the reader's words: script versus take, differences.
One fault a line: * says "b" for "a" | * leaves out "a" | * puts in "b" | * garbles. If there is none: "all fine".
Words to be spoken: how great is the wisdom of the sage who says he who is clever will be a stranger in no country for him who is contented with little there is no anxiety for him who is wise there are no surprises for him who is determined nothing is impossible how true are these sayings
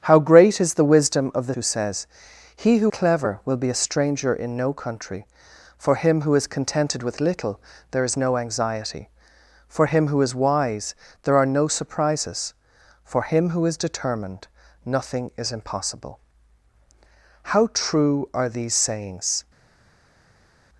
* leaves out "sage"
* leaves out "is"